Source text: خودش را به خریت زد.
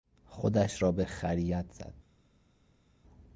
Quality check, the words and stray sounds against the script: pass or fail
pass